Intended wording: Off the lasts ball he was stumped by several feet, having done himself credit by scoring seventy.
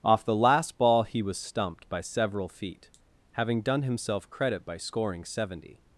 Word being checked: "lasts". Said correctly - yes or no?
no